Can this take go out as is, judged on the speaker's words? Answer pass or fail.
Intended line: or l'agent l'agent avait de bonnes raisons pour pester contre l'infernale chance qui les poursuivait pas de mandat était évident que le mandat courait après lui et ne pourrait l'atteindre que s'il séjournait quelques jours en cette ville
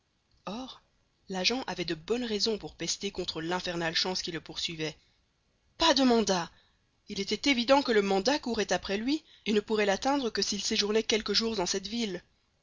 fail